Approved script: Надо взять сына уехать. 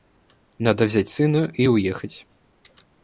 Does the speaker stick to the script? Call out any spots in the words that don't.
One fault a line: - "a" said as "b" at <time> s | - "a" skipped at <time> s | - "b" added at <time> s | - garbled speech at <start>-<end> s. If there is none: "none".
- "и" added at 1.5 s